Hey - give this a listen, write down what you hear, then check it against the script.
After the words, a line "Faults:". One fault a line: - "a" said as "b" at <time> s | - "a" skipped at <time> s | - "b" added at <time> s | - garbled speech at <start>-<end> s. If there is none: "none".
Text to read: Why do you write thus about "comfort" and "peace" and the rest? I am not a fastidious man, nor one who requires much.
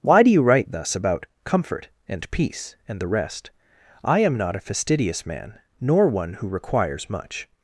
Why do you write thus about "comfort" and "peace" and the rest? I am not a fastidious man, nor one who requires much.
Faults:
none